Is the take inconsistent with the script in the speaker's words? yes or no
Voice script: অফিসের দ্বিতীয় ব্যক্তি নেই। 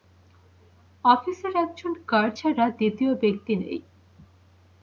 yes